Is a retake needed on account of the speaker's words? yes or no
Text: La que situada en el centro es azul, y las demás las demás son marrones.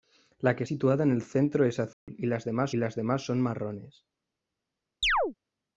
no